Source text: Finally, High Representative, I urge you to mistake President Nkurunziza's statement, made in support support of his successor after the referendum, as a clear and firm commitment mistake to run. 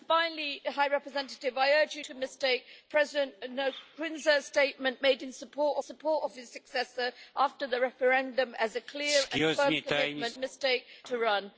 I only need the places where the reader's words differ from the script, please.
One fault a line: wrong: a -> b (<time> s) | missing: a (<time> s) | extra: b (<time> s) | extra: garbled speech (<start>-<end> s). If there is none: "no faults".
no faults